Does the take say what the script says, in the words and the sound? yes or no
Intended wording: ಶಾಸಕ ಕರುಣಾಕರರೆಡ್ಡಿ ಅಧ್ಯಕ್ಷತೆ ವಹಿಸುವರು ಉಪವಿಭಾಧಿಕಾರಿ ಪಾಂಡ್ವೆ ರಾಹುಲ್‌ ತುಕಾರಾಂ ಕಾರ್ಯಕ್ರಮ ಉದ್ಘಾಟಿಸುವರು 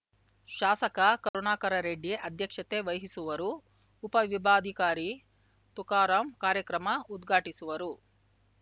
no